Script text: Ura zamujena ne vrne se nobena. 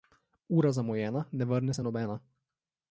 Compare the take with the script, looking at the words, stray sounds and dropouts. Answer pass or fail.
pass